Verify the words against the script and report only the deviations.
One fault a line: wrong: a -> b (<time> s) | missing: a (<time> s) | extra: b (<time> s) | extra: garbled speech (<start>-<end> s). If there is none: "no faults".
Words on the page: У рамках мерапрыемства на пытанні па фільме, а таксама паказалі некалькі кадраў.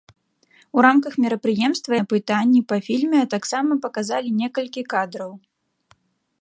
no faults